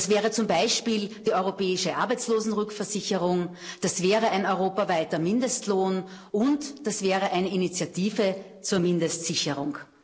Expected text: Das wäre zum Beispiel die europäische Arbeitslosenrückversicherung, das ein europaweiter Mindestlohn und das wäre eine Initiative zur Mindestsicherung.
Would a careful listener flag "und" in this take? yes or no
no